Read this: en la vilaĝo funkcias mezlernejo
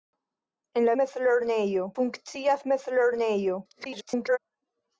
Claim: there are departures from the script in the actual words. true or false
true